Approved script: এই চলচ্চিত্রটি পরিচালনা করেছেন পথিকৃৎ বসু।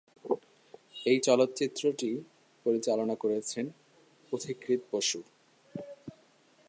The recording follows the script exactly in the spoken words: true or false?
true